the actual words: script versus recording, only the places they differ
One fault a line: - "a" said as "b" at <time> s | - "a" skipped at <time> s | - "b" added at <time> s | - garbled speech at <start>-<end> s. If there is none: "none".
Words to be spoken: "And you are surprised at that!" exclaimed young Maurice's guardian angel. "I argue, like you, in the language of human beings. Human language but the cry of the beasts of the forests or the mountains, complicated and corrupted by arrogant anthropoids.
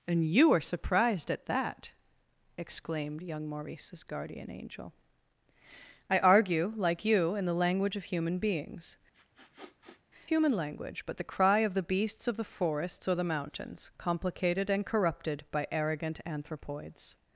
none